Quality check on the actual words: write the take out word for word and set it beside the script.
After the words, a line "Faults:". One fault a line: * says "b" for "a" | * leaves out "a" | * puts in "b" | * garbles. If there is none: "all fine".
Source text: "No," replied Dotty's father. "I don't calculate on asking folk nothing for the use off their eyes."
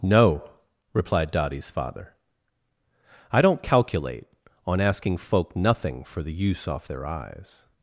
"No," replied Dotty's father. "I don't calculate on asking folk nothing for the use off their eyes."
Faults:
all fine